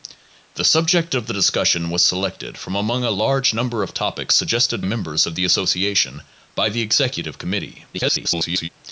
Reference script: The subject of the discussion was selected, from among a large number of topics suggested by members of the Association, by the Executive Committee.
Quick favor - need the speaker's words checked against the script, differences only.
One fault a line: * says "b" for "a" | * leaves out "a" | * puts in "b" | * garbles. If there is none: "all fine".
* leaves out "by"
* garbles